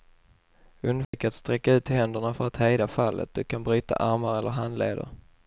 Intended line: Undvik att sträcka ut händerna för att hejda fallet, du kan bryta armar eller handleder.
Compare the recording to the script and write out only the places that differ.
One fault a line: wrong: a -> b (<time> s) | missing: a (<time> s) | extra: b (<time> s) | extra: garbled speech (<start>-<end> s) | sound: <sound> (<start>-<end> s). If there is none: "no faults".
sound: dropout (1.0-1.1 s)